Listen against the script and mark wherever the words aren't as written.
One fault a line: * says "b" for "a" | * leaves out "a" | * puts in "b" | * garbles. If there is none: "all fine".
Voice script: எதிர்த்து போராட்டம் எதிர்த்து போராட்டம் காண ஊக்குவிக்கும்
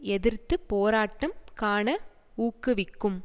* leaves out "எதிர்த்து போராட்டம்"